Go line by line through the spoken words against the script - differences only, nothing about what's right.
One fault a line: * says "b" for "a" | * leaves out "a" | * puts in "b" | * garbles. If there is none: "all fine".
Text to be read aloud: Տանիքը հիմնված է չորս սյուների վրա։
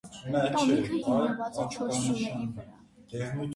all fine